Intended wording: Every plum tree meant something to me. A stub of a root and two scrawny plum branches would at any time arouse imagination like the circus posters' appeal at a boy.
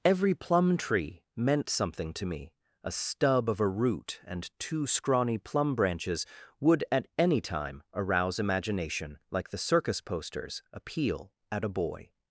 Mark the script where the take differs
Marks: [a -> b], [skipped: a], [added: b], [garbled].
Every plum tree meant something to me. A stub of a root and two scrawny plum branches would at any time arouse imagination like the circus posters' appeal at a boy.